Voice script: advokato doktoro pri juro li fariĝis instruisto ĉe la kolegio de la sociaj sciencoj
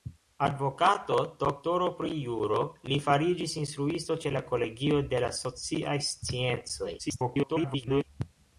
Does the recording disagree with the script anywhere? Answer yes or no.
yes